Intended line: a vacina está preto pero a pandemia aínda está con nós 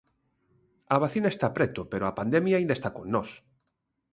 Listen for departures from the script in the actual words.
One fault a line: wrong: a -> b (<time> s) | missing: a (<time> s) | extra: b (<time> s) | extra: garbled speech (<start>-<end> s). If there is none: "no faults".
no faults